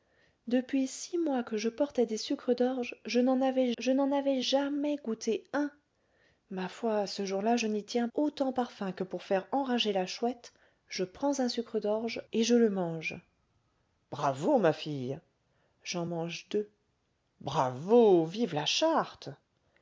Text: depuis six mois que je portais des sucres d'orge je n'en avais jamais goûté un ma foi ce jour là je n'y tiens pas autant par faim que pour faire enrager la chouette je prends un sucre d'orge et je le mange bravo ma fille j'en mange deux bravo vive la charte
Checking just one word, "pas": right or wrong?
wrong